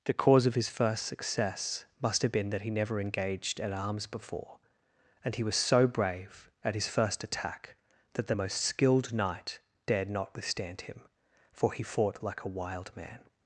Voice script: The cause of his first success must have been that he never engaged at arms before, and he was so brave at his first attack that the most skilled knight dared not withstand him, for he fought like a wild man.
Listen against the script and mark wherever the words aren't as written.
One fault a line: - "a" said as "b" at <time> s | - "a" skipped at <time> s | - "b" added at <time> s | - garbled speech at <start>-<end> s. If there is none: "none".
none